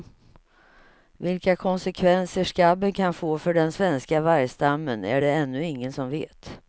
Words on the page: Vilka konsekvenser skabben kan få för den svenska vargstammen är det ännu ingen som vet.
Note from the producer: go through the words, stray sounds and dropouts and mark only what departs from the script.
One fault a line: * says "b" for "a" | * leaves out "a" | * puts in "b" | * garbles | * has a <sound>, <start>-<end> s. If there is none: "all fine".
all fine